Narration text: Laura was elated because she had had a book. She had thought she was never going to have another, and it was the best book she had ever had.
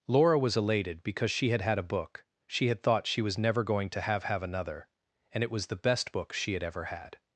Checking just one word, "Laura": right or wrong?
right